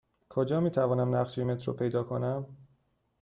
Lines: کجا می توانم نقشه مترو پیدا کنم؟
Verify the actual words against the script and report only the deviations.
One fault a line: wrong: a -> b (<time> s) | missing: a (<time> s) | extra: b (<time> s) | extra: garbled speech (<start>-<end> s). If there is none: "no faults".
no faults